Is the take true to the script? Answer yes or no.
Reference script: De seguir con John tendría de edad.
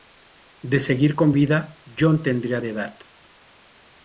no